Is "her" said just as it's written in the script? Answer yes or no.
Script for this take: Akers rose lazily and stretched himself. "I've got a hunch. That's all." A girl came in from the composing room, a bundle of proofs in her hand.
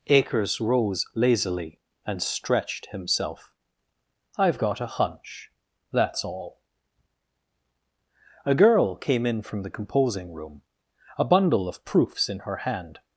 yes